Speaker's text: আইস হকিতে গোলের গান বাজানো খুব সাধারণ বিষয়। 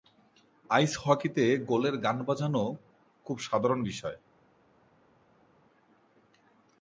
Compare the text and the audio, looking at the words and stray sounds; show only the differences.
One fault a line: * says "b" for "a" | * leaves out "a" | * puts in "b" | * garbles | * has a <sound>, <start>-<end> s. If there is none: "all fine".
all fine